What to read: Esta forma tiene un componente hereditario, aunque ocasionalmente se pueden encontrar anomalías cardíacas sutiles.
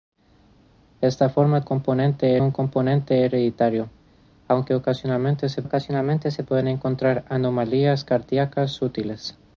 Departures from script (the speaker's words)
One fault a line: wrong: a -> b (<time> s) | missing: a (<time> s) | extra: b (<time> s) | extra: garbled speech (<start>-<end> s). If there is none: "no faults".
wrong: tiene -> componente (1.6 s)
extra: ocasionalmente se (5.6 s)